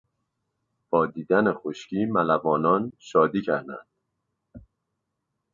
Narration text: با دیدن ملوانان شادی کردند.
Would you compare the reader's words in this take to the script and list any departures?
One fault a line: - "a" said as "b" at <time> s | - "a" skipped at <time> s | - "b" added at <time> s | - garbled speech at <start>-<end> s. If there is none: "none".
- "خشکی" added at 1.5 s